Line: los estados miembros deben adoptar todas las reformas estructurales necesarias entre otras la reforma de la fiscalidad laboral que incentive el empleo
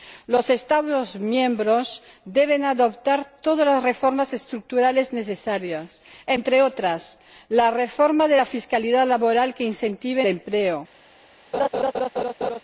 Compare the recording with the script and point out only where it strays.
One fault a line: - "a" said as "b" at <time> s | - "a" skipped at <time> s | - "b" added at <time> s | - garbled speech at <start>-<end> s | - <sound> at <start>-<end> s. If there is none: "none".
- "el" skipped at 10.2 s
- laugh at 11.5-12.6 s